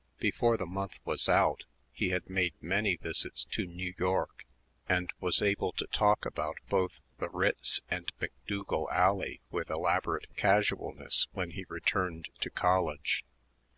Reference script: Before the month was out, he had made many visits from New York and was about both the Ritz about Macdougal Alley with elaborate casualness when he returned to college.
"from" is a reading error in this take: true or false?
true